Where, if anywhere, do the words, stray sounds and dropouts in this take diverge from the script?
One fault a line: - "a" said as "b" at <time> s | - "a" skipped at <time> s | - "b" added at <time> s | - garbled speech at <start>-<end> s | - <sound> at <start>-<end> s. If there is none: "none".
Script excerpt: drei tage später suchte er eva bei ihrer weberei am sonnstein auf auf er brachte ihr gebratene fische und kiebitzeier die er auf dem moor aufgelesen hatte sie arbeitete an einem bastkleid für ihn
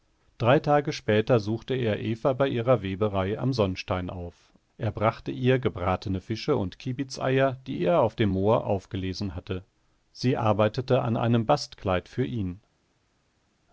- "auf" skipped at 4.3 s